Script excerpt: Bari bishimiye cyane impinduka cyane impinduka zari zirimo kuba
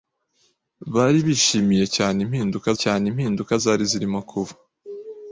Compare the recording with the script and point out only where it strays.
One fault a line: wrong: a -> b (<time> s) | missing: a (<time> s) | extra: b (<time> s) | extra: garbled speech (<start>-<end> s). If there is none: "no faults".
no faults